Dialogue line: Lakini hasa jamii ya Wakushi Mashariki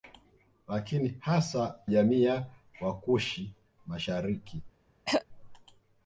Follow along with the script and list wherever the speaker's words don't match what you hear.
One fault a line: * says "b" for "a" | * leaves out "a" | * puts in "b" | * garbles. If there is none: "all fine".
all fine